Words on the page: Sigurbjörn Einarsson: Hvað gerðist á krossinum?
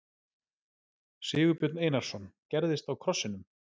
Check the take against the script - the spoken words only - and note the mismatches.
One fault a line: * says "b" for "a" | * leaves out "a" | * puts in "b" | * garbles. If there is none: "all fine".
* leaves out "Hvað"